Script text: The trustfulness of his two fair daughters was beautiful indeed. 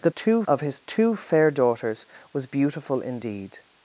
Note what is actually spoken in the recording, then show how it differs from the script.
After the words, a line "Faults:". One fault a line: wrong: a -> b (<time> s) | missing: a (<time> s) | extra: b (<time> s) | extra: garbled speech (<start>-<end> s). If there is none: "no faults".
The two of his two fair daughters was beautiful indeed.
Faults:
wrong: trustfulness -> two (0.1 s)